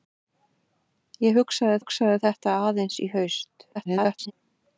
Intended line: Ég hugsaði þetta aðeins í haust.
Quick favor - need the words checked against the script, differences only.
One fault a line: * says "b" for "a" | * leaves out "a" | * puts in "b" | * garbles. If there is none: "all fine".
* puts in "hugsaði"
* garbles